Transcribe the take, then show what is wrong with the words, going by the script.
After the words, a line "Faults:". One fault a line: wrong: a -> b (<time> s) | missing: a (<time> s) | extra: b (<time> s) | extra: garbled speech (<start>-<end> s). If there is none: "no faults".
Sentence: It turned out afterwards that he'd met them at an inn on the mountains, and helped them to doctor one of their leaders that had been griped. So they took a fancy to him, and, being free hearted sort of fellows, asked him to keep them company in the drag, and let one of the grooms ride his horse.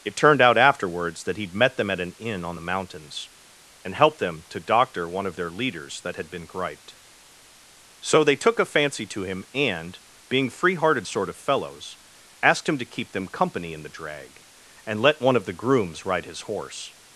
It turned out afterwards that he'd met them at an inn on the mountains, and helped them to doctor one of their leaders that had been griped. So they took a fancy to him, and, being free hearted sort of fellows, asked him to keep them company in the drag, and let one of the grooms ride his horse.
Faults:
no faults